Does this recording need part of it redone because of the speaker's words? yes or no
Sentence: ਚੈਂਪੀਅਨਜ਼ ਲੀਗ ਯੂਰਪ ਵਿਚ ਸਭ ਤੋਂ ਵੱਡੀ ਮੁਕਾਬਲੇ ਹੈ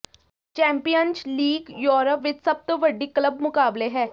yes